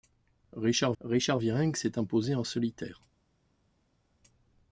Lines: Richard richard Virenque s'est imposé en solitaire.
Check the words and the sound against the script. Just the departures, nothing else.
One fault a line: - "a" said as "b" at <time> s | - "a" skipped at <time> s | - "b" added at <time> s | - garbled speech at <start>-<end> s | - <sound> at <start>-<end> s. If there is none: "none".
none